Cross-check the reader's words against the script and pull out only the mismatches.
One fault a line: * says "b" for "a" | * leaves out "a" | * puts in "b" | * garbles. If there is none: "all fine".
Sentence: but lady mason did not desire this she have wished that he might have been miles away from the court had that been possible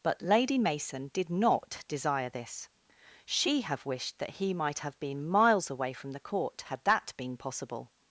all fine